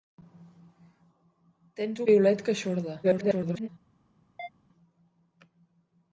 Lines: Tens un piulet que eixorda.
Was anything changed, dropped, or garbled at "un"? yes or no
yes